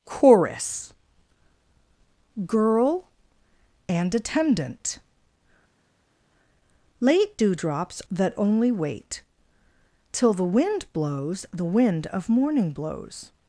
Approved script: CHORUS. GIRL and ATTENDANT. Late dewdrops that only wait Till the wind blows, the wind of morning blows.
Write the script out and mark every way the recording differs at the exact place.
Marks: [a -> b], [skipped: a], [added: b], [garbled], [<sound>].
CHORUS. GIRL and ATTENDANT. Late dewdrops that only wait Till the wind blows, the wind of morning blows.